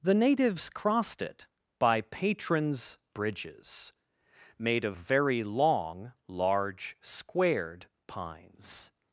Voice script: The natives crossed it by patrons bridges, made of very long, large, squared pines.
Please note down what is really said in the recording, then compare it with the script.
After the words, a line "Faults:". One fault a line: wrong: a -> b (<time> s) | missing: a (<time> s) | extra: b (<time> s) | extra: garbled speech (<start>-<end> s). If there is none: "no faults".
The natives crossed it by patrons bridges, made of very long, large, squared pines.
Faults:
no faults